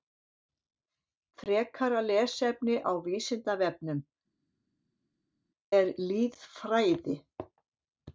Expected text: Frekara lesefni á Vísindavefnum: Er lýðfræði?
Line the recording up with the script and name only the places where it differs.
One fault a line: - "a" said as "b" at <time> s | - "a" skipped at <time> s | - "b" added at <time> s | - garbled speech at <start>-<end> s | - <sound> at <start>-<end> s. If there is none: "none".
none